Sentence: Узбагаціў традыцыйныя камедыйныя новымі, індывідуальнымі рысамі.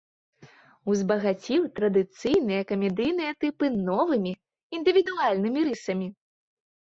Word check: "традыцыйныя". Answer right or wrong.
right